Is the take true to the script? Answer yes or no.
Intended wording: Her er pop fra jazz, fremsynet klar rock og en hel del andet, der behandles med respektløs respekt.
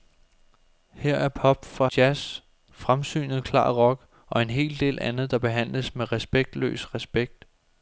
yes